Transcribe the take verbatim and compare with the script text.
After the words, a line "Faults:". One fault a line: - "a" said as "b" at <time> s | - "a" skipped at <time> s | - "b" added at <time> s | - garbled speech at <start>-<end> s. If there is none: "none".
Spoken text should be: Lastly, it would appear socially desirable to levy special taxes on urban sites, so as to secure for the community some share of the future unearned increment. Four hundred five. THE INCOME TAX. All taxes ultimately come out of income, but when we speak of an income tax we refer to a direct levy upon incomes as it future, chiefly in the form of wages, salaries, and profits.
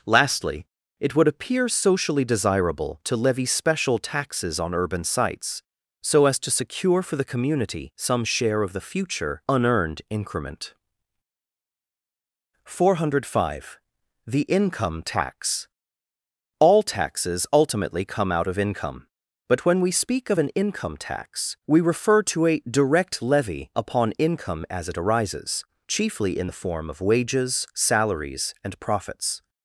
Lastly, it would appear socially desirable to levy special taxes on urban sites, so as to secure for the community some share of the future unearned increment. Four hundred five. THE INCOME TAX. All taxes ultimately come out of income, but when we speak of an income tax we refer to a direct levy upon income as it arises, chiefly in the form of wages, salaries, and profits.
Faults:
- "incomes" said as "income" at 24.2 s
- "future" said as "arises" at 25.0 s